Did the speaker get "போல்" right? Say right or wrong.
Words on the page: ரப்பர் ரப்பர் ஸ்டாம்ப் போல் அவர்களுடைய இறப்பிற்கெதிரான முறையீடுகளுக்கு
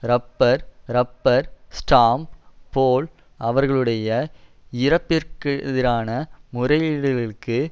right